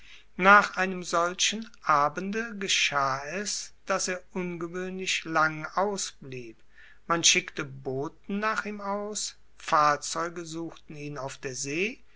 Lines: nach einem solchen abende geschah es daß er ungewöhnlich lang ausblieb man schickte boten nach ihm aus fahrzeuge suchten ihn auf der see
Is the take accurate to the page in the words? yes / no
yes